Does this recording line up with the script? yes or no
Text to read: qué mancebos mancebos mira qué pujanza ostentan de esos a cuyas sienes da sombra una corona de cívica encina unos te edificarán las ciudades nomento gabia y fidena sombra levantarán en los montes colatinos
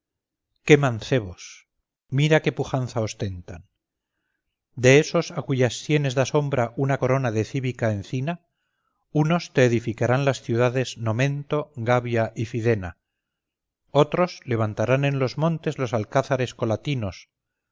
no